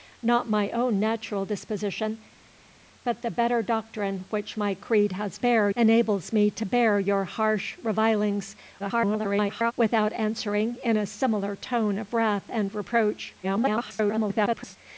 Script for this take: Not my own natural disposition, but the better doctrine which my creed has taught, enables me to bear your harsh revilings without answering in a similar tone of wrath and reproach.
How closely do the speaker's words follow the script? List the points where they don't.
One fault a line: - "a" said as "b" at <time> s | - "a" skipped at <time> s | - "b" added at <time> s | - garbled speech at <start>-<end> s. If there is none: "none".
- "taught" said as "bear" at 5.4 s
- garbled speech at 8.8-9.7 s
- garbled speech at 13.4-14.8 s